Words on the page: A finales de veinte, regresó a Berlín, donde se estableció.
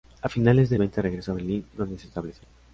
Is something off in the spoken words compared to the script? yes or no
no